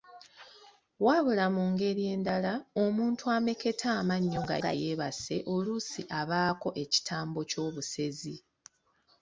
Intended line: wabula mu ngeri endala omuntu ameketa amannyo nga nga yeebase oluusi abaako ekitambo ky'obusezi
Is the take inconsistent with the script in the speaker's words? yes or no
no